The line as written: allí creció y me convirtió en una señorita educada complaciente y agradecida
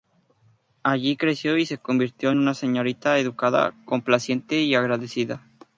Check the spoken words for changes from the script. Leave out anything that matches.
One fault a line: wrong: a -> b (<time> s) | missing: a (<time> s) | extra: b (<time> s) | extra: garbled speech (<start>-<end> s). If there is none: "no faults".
wrong: me -> se (1.7 s)